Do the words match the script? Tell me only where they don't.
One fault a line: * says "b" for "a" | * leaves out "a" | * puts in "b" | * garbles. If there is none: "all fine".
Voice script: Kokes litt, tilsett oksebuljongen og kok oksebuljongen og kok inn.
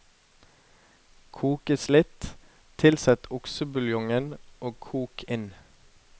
* leaves out "oksebuljongen og kok"